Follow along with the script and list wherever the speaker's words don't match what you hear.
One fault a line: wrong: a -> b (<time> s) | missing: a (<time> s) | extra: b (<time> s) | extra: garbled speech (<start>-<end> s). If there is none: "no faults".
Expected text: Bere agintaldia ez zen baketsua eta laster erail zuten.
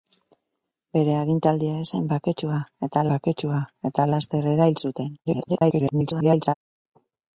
extra: baketsua eta (3.1 s)
extra: garbled speech (5.2-6.5 s)